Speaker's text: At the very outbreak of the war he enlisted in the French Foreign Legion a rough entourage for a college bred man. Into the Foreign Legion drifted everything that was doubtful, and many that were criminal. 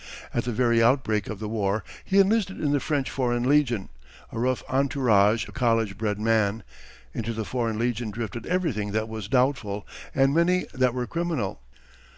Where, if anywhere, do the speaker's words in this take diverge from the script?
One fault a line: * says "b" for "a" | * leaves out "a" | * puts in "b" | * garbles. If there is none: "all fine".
* leaves out "for"